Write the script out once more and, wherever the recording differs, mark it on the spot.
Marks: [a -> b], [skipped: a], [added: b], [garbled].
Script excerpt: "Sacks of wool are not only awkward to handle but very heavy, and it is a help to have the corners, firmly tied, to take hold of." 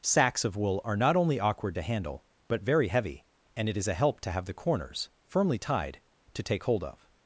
"Sacks of wool are not only awkward to handle but very heavy, and it is a help to have the corners, firmly tied, to take hold of."